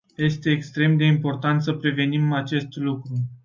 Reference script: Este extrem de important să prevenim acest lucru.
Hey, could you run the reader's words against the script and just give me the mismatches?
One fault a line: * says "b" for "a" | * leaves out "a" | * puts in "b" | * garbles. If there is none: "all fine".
all fine